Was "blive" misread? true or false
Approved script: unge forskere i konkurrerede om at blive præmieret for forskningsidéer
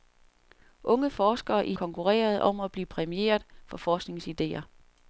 false